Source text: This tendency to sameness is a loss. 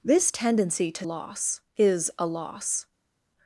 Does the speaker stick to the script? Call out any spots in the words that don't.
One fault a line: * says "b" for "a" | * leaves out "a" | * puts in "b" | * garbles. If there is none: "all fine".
* says "loss" for "sameness"